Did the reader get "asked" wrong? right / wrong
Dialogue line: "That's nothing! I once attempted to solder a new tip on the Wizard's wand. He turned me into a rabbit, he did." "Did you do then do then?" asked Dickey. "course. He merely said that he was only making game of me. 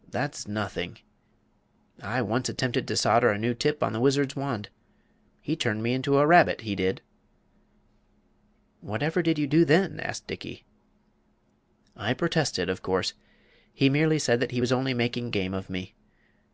wrong